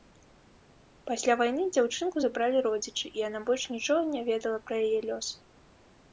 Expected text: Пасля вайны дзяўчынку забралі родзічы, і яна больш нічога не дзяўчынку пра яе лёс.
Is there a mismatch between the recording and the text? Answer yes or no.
yes